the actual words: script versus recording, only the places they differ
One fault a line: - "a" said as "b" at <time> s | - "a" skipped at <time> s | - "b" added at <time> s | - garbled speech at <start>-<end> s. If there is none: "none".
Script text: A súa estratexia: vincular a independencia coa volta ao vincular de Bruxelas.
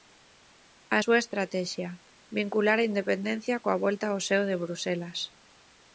- "vincular" said as "seo" at 4.3 s